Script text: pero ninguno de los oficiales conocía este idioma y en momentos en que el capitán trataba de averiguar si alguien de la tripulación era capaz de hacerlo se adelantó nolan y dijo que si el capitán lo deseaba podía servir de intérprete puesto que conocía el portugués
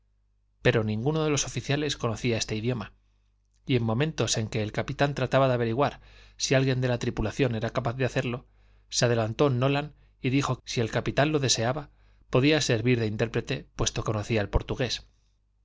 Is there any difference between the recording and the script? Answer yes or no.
yes